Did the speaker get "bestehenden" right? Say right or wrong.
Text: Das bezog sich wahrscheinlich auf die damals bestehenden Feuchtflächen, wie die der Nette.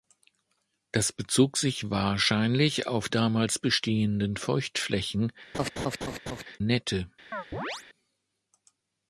right